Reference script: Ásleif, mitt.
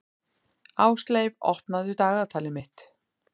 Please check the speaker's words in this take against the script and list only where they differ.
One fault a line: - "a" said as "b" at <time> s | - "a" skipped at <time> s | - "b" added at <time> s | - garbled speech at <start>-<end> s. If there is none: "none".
- "opnaðu dagatalið" added at 1.5 s